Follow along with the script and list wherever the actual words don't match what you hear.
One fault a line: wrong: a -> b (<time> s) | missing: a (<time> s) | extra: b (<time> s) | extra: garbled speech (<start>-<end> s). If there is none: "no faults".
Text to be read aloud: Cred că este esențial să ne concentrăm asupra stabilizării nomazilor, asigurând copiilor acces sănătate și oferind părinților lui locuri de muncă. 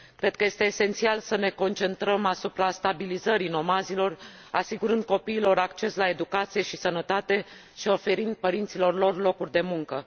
extra: la educație și (6.0 s)
wrong: lui -> lor (8.9 s)